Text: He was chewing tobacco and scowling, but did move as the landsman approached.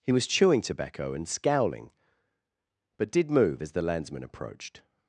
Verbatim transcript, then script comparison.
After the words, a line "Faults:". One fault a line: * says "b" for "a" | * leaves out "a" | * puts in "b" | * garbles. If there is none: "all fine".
He was chewing tobacco and scowling, but did move as the landsman approached.
Faults:
all fine